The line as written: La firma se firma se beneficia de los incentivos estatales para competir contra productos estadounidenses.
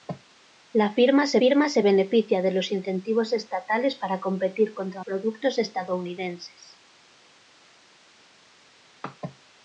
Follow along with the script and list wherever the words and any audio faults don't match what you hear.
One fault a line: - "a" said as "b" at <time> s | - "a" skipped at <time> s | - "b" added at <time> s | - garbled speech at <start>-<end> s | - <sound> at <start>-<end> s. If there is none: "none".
none